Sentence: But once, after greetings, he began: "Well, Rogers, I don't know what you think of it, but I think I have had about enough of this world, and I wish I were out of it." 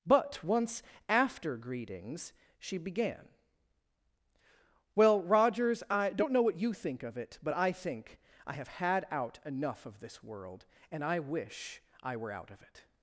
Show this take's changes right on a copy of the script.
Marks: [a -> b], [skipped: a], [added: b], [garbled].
But once, after greetings, [he -> she] began: "Well, Rogers, I don't know what you think of it, but I think I have had [about -> out] enough of this world, and I wish I were out of it."